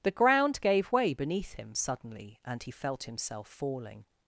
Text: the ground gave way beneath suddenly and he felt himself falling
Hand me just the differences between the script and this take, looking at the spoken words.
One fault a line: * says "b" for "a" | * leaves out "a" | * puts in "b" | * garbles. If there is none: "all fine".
* puts in "him"